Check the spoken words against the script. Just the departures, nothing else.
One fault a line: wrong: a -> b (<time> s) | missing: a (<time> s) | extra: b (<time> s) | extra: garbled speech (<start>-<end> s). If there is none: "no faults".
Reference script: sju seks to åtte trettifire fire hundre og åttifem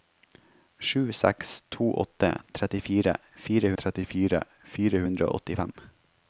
extra: trettifire fire (3.8 s)